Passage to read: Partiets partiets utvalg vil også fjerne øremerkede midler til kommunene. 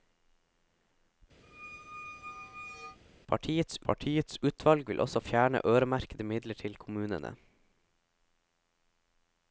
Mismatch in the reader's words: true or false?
false